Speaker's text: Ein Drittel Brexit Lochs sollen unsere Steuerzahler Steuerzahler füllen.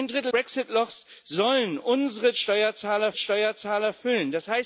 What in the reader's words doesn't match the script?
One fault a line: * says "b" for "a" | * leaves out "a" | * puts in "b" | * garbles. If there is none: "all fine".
all fine